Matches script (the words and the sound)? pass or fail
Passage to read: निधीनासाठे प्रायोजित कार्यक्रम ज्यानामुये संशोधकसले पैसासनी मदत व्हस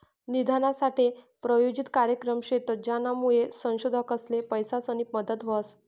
fail